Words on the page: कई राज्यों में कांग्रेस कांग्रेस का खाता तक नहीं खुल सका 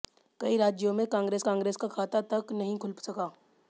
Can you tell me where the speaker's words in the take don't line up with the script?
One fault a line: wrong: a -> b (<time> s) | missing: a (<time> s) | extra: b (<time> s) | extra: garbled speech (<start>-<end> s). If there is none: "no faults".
no faults